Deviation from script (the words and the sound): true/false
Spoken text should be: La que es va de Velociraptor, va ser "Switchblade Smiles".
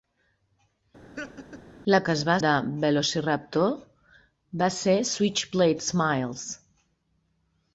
true